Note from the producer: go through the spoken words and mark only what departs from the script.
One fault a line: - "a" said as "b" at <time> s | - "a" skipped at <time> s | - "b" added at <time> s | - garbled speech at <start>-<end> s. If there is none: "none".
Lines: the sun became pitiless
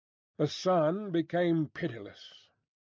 none